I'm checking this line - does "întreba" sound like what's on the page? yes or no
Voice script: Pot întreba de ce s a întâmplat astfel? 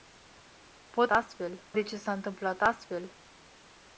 no